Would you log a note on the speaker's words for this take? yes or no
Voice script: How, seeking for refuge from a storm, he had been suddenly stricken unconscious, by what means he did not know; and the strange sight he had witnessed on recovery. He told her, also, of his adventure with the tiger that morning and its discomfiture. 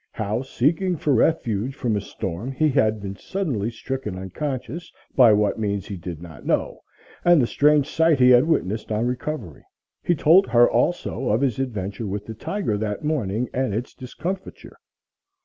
no